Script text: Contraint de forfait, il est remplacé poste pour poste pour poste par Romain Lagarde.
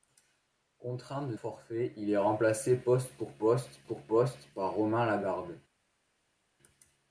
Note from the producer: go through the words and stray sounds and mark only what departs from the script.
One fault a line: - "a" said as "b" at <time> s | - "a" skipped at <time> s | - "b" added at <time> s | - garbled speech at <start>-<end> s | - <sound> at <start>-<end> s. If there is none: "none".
none